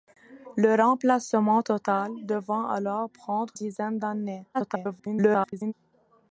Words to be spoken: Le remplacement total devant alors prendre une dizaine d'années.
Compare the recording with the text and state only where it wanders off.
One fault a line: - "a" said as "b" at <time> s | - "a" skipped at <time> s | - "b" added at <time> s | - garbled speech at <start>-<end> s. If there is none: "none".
- "une" skipped at 3.5 s
- garbled speech at 4.5-5.7 s